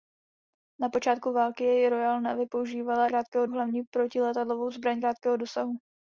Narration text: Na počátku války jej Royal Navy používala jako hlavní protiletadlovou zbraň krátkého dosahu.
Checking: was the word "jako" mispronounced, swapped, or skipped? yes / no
yes